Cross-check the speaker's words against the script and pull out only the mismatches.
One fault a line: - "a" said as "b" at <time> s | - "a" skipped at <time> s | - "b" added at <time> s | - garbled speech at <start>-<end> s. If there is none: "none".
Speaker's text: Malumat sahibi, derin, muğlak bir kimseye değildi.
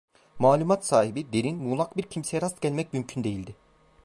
- "rast gelmek mümkün" added at 2.4 s